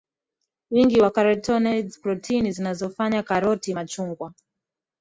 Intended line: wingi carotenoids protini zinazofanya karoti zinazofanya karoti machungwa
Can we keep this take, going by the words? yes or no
no